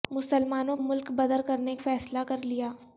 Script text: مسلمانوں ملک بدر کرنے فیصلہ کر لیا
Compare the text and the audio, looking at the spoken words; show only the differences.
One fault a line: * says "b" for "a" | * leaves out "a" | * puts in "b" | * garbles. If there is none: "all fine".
all fine